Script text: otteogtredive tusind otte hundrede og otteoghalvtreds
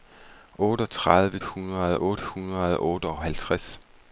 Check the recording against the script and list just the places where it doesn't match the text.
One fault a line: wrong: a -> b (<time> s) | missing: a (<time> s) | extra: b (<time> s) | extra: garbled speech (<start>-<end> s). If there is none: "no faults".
wrong: tusind -> hundrede (1.4 s)